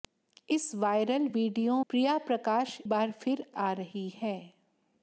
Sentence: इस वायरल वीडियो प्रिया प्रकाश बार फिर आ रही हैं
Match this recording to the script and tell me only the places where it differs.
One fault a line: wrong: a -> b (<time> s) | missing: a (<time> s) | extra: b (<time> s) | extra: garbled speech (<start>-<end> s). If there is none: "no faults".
no faults